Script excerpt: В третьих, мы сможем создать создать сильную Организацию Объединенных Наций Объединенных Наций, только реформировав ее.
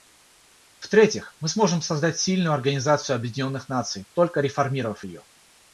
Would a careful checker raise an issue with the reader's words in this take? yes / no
yes